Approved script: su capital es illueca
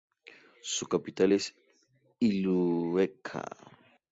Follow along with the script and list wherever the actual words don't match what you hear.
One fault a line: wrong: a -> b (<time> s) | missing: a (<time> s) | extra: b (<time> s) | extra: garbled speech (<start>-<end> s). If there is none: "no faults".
no faults